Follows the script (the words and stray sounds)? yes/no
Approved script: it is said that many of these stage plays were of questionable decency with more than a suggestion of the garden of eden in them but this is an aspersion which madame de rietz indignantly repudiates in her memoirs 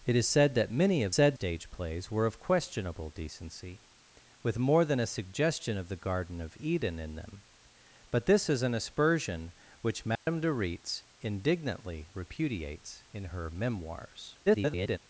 no